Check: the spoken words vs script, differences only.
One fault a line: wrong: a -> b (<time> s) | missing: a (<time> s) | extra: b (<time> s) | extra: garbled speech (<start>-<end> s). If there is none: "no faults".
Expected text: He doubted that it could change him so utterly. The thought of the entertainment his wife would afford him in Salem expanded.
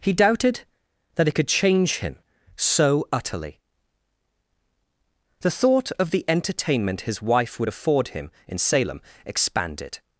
no faults